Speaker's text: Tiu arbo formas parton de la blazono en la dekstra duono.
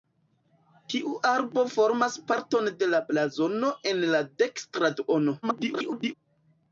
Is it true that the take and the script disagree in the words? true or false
true